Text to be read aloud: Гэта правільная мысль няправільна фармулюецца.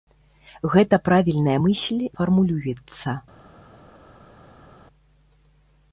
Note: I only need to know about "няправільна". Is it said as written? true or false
false